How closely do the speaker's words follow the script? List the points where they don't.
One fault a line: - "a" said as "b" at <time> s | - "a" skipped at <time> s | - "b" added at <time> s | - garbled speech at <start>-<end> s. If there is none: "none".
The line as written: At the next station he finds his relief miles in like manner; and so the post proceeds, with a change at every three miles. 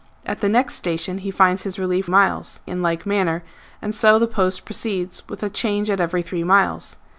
none